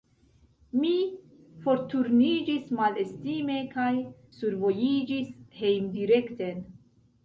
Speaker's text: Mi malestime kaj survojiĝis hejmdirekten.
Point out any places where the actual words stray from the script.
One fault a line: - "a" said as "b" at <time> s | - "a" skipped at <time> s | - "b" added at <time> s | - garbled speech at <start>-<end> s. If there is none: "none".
- "forturniĝis" added at 1.6 s